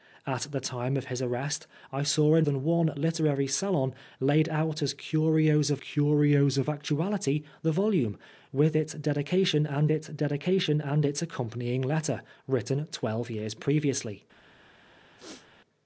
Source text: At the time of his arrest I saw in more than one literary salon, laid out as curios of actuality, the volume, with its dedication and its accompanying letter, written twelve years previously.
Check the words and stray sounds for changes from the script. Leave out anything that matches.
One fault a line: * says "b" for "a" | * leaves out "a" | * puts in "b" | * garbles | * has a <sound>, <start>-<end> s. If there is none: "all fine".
* leaves out "more"
* puts in "curios of"
* puts in "dedication and its"
* has a throat clearing, 15.2-15.5 s